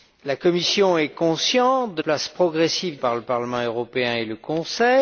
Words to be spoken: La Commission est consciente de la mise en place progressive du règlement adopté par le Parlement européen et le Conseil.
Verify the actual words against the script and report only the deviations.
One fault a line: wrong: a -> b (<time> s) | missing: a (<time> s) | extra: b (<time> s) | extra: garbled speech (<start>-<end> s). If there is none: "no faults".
missing: la mise en (2.0 s)
missing: du règlement adopté (3.0 s)